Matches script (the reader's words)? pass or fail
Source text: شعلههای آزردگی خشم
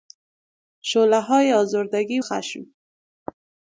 pass